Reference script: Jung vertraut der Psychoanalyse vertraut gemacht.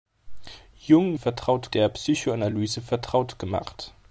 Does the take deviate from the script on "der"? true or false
false